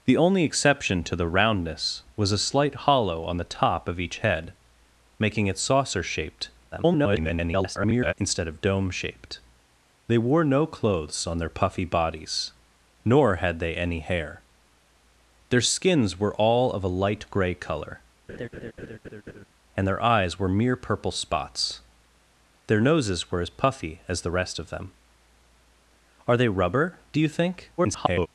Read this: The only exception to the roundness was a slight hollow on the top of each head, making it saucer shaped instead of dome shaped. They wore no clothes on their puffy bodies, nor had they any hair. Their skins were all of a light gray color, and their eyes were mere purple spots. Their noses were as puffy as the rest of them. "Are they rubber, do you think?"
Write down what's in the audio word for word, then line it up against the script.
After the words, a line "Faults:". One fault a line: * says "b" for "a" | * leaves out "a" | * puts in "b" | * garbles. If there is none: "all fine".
The only exception to the roundness was a slight hollow on the top of each head, making it saucer shaped [garbled] instead of dome shaped. They wore no clothes on their puffy bodies, nor had they any hair. Their skins were all of a light gray color, and their eyes were mere purple spots. Their noses were as puffy as the rest of them. "Are they rubber, do you think?" [garbled]
Faults:
* garbles
* garbles